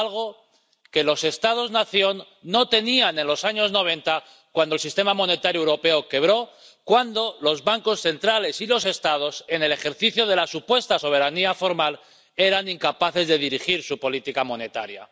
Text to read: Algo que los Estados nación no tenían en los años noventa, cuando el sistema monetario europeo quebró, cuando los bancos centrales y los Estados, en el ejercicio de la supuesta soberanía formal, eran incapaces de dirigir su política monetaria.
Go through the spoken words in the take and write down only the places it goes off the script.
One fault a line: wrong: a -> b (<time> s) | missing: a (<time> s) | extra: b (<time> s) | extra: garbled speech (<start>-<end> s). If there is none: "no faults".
no faults